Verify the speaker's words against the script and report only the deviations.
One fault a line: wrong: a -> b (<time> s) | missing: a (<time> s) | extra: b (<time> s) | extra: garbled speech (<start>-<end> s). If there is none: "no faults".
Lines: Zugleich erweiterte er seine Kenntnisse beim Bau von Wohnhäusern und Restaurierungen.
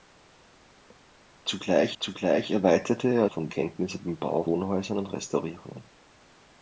extra: zugleich (2.0 s)
wrong: seine -> von (3.2 s)
missing: von (4.4 s)